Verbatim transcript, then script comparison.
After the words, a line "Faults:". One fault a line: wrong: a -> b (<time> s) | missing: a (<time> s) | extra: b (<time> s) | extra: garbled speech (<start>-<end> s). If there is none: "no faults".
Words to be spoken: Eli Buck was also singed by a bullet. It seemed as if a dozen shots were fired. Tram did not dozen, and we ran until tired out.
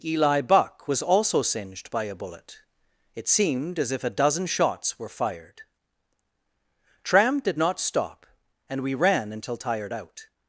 Eli Buck was also singed by a bullet. It seemed as if a dozen shots were fired. Tram did not stop, and we ran until tired out.
Faults:
wrong: dozen -> stop (7.8 s)